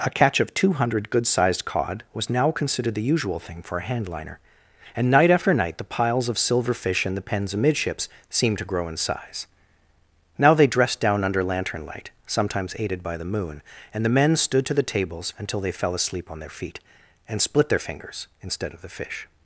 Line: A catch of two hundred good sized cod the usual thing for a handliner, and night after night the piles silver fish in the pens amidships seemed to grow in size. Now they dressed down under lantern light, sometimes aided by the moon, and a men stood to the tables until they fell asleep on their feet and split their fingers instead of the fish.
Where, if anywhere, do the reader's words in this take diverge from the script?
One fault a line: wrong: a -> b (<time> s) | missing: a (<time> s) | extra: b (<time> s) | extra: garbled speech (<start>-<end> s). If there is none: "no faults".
extra: was now considered (2.1 s)
extra: of (6.3 s)
wrong: a -> the (14.0 s)